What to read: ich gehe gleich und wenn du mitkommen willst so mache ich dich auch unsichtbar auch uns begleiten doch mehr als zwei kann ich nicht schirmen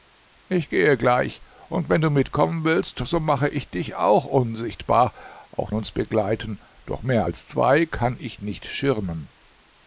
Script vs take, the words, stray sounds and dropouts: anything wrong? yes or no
no